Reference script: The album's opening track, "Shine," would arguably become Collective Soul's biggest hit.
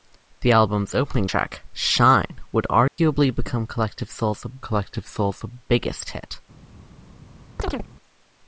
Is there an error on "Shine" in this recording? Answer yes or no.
no